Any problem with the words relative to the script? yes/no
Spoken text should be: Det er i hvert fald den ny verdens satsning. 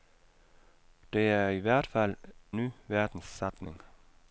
yes